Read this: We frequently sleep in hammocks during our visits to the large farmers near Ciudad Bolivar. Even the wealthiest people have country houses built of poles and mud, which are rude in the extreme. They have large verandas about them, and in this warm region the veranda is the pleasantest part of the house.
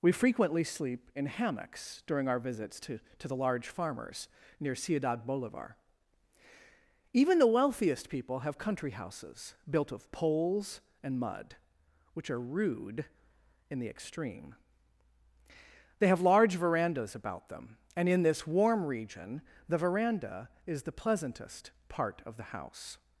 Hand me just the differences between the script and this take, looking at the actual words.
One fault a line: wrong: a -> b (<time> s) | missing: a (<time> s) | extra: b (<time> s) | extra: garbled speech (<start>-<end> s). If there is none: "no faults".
extra: to (3.2 s)